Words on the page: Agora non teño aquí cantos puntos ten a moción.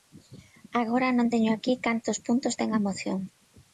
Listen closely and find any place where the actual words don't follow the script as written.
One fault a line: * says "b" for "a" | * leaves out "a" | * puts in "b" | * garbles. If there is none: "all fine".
all fine